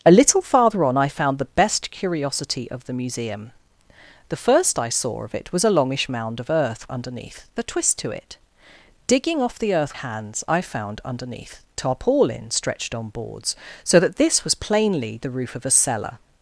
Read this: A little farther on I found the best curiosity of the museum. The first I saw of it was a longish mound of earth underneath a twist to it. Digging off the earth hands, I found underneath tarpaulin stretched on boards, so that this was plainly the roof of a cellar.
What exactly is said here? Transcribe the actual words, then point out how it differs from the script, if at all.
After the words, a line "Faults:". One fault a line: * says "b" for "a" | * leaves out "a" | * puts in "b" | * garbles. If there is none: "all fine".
A little farther on I found the best curiosity of the museum. The first I saw of it was a longish mound of earth underneath a twist to it. Digging off the earth hands, I found underneath tarpaulin stretched on boards, so that this was plainly the roof of a cellar.
Faults:
all fine